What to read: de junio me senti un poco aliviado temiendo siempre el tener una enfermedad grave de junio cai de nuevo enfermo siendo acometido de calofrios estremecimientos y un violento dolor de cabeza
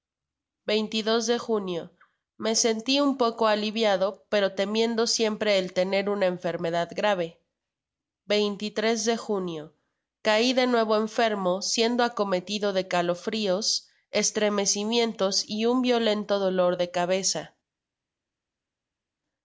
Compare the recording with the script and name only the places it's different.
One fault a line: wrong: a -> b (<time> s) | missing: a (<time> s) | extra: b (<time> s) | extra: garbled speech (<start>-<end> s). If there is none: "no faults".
extra: pero (4.3 s)